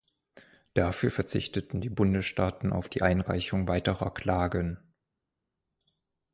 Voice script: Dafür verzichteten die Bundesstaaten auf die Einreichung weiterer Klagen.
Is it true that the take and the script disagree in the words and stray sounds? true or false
false